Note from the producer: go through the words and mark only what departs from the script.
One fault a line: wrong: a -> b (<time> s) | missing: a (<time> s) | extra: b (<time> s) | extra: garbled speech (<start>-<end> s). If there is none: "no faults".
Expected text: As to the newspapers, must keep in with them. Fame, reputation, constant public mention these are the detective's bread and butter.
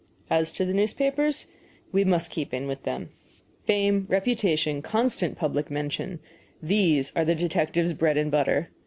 extra: we (1.9 s)